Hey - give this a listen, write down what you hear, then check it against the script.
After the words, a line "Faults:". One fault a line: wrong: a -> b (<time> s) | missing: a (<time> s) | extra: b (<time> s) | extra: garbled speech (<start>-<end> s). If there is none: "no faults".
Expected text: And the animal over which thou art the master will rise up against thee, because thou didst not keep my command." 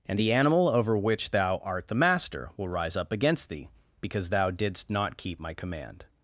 And the animal over which thou art the master will rise up against thee, because thou didst not keep my command."
Faults:
no faults